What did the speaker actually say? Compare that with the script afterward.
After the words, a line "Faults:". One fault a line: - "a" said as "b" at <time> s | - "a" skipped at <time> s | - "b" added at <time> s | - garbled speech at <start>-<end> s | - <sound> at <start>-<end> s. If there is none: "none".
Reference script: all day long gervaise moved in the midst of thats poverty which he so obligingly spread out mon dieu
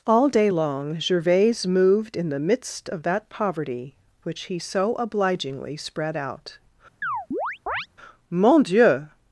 all day long gervaise moved in the midst of that poverty which he so obligingly spread out mon dieu
Faults:
- "thats" said as "that" at 3.0 s
- chirp at 7.0-7.9 s